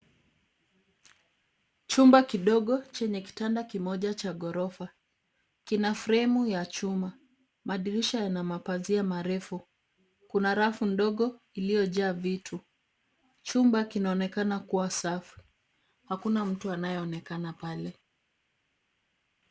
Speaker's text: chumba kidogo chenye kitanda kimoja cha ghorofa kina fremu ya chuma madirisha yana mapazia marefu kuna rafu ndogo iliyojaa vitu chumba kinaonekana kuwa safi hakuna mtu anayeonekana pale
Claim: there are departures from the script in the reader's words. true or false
false